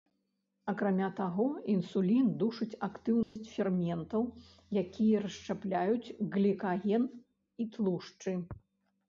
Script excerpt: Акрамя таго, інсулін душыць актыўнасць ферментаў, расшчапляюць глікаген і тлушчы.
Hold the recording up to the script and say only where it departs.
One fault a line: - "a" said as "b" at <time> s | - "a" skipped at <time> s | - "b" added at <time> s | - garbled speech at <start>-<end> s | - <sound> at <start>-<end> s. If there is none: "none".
- dropout at 3.2-3.4 s
- "якія" added at 4.8 s